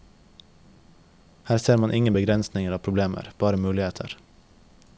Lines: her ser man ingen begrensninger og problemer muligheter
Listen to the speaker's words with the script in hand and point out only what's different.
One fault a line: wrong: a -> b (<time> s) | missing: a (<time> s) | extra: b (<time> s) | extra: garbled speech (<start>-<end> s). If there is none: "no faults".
extra: bare (3.4 s)